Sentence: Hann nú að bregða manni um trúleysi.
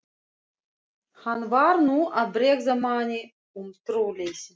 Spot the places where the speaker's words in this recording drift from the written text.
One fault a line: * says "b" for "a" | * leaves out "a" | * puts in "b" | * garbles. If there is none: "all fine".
* puts in "var"